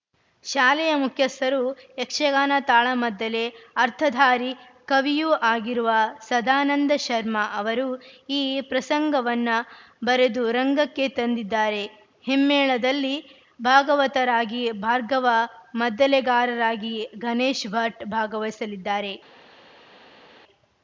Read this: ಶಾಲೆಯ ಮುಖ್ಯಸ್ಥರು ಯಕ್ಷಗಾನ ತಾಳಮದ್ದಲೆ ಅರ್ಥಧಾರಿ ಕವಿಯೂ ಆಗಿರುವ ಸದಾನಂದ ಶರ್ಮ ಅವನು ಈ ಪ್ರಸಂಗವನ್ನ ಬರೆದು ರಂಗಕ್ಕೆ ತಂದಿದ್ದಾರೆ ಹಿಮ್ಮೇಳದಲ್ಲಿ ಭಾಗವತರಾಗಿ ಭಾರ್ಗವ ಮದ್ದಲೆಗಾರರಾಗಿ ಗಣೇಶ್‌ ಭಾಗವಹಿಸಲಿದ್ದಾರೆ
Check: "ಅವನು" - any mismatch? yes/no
yes